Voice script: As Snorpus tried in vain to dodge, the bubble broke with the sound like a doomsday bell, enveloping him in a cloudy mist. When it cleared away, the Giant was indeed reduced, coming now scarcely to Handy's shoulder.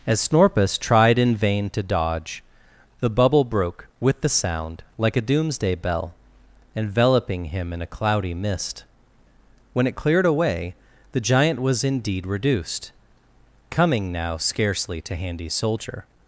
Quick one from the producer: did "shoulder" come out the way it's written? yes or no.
no